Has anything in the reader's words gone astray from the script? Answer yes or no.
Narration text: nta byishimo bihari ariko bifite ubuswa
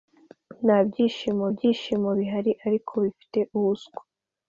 yes